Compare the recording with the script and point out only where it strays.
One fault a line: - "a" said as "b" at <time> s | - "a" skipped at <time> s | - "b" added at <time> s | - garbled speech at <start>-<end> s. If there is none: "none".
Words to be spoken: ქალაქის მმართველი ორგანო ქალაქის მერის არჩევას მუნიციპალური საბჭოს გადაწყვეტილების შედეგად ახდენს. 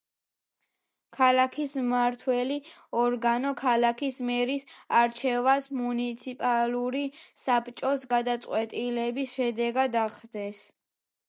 none